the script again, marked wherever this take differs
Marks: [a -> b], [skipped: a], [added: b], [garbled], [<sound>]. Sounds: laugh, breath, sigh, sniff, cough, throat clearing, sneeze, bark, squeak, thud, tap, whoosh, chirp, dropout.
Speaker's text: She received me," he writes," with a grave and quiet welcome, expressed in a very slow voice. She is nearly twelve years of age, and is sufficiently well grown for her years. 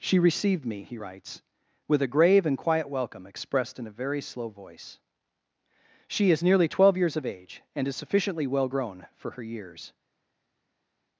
She received me," he writes," with a grave and quiet welcome, expressed in a very slow voice. She is nearly twelve years of age, and is sufficiently well grown for her years.